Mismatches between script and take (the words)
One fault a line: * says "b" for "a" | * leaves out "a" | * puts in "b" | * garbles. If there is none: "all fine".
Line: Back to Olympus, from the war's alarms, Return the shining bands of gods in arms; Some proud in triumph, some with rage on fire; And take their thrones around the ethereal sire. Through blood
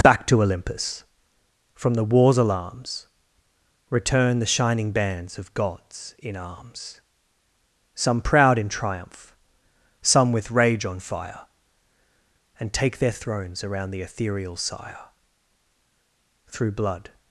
all fine